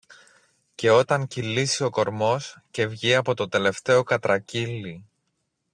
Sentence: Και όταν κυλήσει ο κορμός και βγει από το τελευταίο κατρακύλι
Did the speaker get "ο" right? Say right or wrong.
right